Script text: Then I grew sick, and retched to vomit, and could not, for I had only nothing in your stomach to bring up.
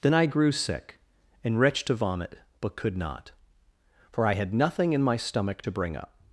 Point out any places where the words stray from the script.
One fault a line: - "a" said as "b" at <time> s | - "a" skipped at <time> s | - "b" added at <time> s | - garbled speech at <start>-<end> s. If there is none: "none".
- "and" said as "but" at 2.6 s
- "only" skipped at 4.5 s
- "your" said as "my" at 5.0 s